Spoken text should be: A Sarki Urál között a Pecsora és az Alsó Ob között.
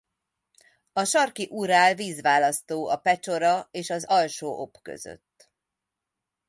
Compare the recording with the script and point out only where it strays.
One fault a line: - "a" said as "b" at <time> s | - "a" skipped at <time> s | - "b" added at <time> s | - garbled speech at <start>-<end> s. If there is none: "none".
- "között" said as "vízválasztó" at 1.9 s